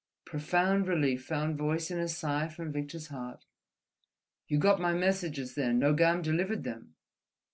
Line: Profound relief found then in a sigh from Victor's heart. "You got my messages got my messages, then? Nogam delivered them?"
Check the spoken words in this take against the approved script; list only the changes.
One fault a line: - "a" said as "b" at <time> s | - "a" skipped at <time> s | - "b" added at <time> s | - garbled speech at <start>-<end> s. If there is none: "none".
- "then" said as "voice" at 1.6 s
- "got my messages" skipped at 5.5 s